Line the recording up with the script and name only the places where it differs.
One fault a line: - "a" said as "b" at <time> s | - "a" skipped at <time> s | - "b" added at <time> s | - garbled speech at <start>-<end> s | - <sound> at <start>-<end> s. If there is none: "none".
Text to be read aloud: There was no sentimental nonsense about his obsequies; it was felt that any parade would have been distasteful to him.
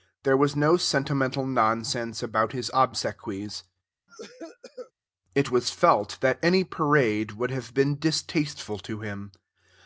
- cough at 4.1-4.9 s